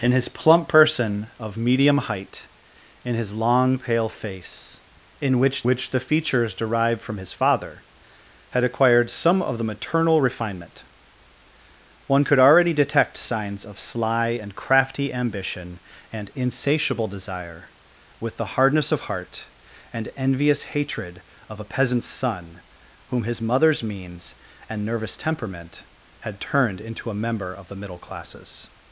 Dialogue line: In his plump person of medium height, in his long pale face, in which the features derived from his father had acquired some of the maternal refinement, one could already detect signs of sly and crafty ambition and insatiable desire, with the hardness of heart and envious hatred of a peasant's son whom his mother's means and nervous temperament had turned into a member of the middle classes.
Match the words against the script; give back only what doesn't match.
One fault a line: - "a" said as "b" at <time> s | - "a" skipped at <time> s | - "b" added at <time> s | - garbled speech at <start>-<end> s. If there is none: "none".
- "which" added at 5.6 s